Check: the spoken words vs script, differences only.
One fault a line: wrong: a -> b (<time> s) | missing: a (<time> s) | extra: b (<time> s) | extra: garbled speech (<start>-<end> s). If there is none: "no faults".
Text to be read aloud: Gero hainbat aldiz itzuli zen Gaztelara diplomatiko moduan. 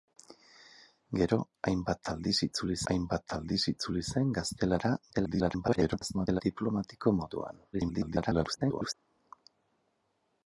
extra: hainbat aldiz itzuli (2.9 s)
extra: garbled speech (5.1-6.4 s)
extra: garbled speech (7.7-8.9 s)